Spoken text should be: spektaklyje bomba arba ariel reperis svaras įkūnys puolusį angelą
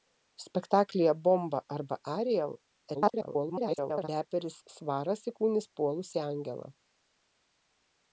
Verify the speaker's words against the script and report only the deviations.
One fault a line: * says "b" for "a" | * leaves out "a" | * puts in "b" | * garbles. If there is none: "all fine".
* garbles